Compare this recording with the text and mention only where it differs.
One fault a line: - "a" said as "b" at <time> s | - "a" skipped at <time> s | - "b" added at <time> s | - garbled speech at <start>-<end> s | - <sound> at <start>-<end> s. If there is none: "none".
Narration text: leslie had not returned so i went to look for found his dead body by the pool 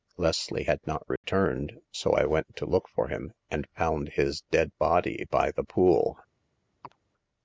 - dropout at 1.2-1.2 s
- "him and" added at 3.1 s
- chirp at 6.8-7.0 s